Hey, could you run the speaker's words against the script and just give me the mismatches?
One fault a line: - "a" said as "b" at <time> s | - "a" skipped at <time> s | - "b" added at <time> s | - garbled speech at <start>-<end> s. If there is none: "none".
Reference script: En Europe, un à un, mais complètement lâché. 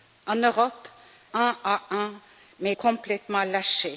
none